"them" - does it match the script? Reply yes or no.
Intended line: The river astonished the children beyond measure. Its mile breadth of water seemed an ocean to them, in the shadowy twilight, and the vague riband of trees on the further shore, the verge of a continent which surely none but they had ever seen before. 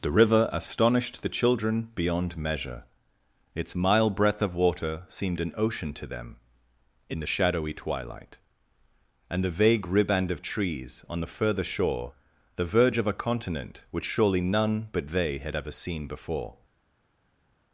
yes